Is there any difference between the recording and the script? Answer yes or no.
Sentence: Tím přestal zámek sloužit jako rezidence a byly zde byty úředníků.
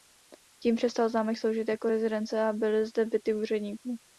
no